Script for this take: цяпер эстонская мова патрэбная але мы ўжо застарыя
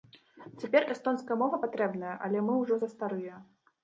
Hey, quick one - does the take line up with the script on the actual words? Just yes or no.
yes